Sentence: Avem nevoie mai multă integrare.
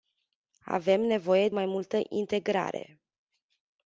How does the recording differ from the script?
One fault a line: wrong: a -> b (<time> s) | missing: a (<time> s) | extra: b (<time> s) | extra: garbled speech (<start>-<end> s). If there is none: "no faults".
no faults